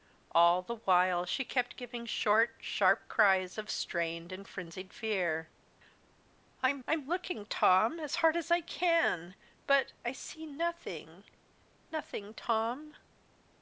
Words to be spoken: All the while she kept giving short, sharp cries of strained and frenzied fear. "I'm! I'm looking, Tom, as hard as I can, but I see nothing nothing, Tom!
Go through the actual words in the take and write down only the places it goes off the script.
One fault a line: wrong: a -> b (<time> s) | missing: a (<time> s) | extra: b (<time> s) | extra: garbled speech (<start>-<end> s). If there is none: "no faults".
no faults